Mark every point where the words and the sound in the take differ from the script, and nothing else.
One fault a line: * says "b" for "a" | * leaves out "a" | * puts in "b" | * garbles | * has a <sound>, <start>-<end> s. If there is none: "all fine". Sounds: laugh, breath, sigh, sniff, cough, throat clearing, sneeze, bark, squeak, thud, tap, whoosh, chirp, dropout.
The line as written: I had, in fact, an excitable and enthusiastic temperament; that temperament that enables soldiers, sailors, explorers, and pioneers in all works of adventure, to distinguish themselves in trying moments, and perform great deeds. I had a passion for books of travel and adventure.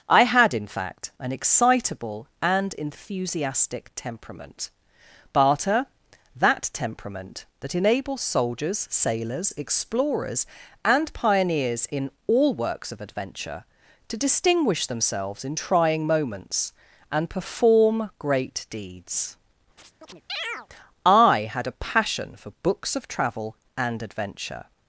* puts in "barter"
* has a chirp, 19.8-20.7 s